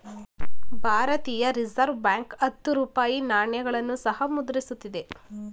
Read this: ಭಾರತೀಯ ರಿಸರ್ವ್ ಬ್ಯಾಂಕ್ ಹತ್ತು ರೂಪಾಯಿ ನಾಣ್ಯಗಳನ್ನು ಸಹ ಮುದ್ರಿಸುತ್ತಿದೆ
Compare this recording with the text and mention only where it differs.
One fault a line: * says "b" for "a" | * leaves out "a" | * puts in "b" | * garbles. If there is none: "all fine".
all fine